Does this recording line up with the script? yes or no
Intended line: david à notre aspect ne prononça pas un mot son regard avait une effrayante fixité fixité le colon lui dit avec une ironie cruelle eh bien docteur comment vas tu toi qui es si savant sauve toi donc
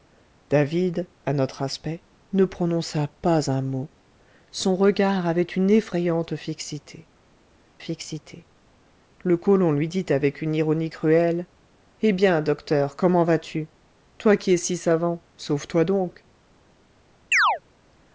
yes